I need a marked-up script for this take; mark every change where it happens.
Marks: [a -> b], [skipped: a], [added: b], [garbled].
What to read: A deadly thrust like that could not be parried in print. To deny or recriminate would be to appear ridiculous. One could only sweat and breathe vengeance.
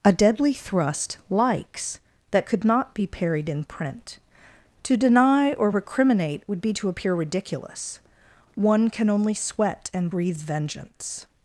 A deadly thrust [like -> likes] that could not be parried in print. To deny or recriminate would be to appear ridiculous. One [could -> can] only sweat and breathe vengeance.